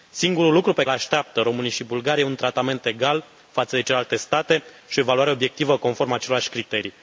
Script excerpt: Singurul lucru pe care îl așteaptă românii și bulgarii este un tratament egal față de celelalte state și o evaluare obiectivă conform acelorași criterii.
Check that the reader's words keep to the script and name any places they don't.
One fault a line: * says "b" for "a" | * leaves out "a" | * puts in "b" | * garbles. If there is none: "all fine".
* leaves out "care"